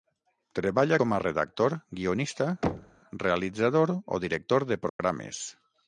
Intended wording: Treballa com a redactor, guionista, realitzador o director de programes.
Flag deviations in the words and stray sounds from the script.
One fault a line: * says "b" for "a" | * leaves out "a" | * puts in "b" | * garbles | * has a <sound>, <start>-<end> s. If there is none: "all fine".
* has a thud, 2.6-3.0 s
* has a dropout, 4.9-5.0 s